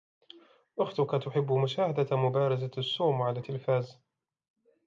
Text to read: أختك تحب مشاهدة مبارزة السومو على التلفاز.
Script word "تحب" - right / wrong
right